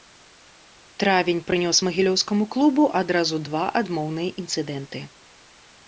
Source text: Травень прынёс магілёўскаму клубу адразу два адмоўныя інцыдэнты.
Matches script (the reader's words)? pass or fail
pass